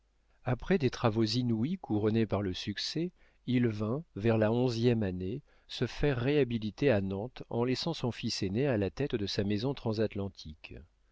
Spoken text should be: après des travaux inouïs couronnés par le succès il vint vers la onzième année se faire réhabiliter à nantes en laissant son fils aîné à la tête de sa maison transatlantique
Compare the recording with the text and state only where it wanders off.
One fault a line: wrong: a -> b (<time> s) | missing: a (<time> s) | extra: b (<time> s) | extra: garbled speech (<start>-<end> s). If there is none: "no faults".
no faults